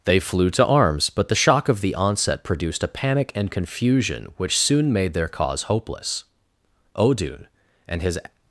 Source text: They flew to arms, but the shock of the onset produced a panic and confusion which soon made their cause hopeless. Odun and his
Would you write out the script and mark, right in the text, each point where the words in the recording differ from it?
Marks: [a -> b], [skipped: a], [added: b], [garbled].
They flew to arms, but the shock of the onset produced a panic and confusion which soon made their cause hopeless. Odun and his